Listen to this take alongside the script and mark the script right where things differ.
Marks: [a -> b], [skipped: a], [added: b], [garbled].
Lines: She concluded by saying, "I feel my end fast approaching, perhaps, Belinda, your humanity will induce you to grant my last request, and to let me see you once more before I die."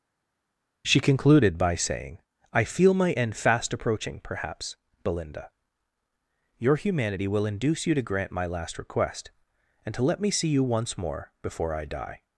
She concluded by saying, "I feel my end fast approaching, perhaps, Belinda, your humanity will induce you to grant my last request, and to let me see you once more before I die."